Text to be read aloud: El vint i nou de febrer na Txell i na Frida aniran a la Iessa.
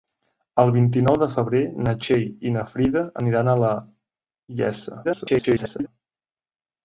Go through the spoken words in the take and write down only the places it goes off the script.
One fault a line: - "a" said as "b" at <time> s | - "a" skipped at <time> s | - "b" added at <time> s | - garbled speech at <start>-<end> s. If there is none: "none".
- garbled speech at 5.0-5.9 s